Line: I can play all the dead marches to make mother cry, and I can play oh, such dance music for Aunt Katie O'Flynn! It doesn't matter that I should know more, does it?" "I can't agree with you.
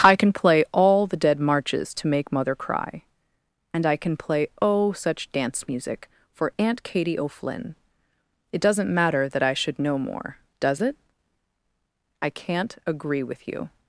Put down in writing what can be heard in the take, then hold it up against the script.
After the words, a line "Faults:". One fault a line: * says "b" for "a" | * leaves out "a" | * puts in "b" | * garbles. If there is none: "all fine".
I can play all the dead marches to make mother cry, and I can play oh, such dance music for Aunt Katie O'Flynn! It doesn't matter that I should know more, does it?" "I can't agree with you.
Faults:
all fine